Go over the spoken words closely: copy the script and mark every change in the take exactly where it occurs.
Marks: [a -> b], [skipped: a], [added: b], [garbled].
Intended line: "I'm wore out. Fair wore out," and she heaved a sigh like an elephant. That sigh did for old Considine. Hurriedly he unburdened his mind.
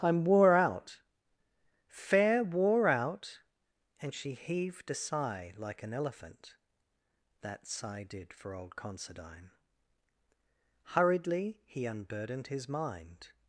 "I'm wore out. Fair wore out," and she heaved a sigh like an elephant. That sigh did for old Considine. Hurriedly he unburdened his mind.